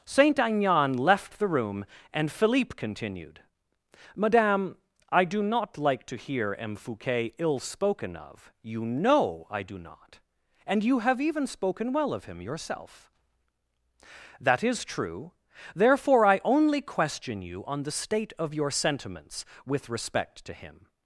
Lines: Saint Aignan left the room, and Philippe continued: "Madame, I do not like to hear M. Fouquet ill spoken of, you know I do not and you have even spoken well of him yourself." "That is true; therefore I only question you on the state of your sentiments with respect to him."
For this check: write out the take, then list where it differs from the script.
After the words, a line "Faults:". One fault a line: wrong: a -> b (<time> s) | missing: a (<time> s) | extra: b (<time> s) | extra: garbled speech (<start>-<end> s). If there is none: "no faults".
Saint Aignan left the room, and Philippe continued: "Madame, I do not like to hear M. Fouquet ill spoken of, you know I do not and you have even spoken well of him yourself." "That is true; therefore I only question you on the state of your sentiments with respect to him."
Faults:
no faults